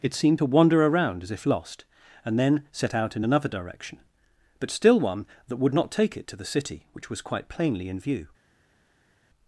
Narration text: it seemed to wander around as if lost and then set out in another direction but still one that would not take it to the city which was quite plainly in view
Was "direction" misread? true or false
false